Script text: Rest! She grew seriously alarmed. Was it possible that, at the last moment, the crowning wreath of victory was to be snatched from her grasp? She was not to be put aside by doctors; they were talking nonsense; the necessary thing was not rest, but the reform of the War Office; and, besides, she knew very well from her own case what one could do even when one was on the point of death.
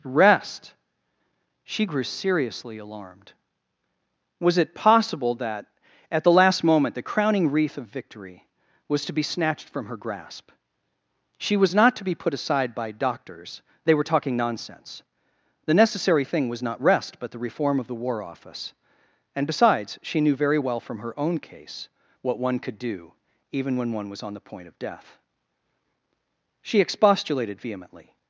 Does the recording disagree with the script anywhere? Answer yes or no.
yes